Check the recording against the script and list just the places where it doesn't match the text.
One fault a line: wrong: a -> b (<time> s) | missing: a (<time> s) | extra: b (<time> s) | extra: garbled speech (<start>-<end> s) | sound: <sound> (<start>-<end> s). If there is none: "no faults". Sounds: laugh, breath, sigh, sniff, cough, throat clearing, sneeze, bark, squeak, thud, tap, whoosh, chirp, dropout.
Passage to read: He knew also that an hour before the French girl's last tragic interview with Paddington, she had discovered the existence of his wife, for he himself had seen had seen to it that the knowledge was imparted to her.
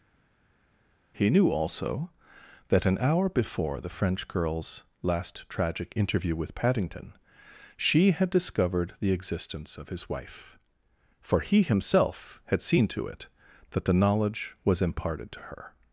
missing: had seen (12.9 s)